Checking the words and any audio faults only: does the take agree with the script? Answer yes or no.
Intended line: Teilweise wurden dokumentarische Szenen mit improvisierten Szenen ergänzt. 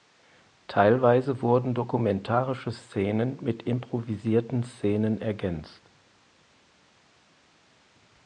yes